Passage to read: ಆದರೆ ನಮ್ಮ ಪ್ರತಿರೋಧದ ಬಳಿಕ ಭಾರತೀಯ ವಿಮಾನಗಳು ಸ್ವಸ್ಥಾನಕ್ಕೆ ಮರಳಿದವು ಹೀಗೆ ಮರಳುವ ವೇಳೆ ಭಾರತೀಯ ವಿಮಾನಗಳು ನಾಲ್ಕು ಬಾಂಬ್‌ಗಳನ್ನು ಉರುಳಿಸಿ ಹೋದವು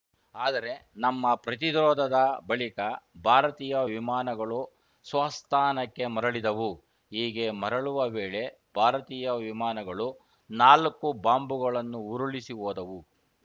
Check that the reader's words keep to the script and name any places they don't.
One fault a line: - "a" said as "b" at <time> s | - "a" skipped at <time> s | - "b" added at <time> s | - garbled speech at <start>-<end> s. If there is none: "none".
none